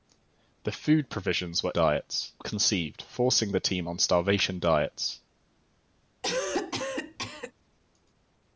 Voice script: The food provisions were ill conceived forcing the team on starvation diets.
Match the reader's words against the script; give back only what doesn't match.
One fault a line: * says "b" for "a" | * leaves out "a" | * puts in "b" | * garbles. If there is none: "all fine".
* says "diets" for "ill"